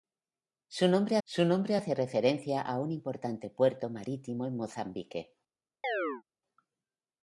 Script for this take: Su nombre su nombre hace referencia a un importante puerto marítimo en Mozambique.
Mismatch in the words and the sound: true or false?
true